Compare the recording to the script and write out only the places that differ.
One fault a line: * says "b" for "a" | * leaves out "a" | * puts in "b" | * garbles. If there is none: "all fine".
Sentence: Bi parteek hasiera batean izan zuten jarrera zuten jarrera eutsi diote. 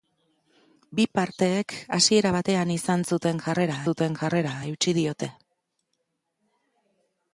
all fine